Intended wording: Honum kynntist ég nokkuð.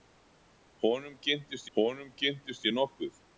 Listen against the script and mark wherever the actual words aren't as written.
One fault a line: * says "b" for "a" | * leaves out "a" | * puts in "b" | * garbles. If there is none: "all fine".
* puts in "honum kynntist"